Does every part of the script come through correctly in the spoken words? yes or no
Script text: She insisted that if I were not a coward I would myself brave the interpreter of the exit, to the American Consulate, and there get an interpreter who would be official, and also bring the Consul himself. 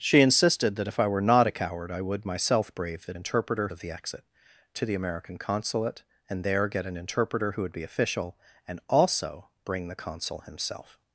yes